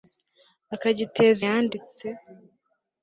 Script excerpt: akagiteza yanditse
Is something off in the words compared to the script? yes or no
no